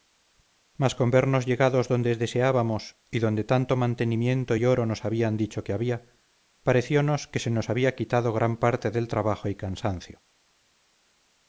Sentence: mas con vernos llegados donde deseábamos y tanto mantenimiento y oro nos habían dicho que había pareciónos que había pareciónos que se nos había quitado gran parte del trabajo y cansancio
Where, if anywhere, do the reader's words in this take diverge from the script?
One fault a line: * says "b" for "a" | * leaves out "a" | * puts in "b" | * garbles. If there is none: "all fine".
* puts in "donde"
* leaves out "había pareciónos que"